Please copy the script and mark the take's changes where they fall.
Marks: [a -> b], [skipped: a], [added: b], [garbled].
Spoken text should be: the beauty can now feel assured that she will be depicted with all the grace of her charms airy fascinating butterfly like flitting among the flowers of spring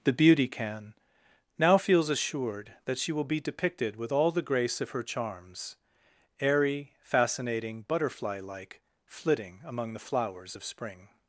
the beauty can now [feel -> feels] assured that she will be depicted with all the grace of her charms airy fascinating butterfly like flitting among the flowers of spring